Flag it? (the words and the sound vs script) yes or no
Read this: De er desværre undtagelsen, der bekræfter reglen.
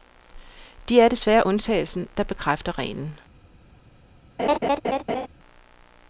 yes